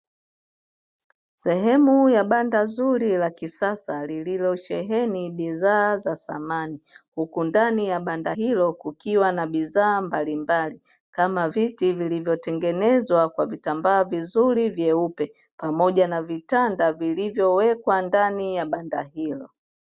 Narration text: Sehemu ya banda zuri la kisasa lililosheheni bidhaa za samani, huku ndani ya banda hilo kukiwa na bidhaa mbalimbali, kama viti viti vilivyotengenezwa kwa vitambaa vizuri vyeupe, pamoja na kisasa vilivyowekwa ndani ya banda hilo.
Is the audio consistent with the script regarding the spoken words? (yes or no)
no